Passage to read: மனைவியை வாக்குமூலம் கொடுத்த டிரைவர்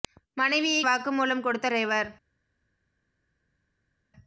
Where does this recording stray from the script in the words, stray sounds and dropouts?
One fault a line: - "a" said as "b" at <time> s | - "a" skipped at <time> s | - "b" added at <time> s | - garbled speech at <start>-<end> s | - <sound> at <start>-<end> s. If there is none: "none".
none